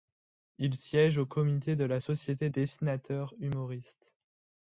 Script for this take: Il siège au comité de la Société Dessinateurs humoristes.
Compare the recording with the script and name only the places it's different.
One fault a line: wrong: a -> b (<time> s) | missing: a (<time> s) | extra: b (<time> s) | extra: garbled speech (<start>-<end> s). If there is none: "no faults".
no faults